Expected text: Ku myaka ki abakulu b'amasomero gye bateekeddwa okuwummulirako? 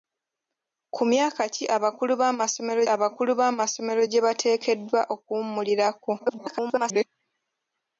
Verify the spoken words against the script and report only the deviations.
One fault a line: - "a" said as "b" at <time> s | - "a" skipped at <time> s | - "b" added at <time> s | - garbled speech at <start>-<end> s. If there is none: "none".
- "abakulu b'amasomero" added at 2.9 s
- garbled speech at 6.2-7.0 s